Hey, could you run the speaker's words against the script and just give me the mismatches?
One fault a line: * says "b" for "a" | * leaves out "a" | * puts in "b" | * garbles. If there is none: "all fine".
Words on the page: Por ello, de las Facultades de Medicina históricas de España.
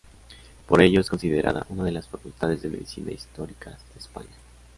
* puts in "es considerada una"